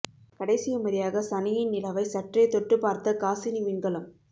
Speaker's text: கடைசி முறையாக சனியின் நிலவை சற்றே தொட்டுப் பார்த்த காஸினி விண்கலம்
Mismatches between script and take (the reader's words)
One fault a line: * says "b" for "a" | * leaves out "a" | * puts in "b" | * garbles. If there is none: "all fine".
all fine